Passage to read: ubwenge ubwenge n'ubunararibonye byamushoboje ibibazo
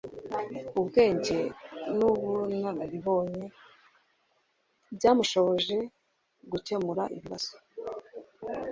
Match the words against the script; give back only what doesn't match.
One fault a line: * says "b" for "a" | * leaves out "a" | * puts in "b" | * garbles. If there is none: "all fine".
* leaves out "ubwenge"
* puts in "gukemura"